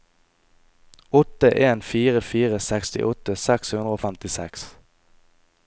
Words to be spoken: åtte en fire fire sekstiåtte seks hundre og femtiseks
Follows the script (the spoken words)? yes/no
yes